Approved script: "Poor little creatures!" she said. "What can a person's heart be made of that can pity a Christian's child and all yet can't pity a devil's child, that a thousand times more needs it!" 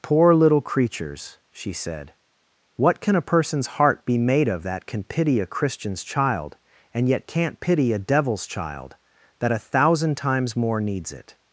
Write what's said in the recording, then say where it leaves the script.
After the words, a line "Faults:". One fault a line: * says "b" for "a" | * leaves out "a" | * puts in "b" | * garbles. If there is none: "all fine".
"Poor little creatures!" she said. "What can a person's heart be made of that can pity a Christian's child and yet can't pity a devil's child, that a thousand times more needs it!"
Faults:
* leaves out "all"